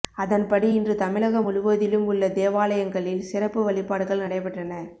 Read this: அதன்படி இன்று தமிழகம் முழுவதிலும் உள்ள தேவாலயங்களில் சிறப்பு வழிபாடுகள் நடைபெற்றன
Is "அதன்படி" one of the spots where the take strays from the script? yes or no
no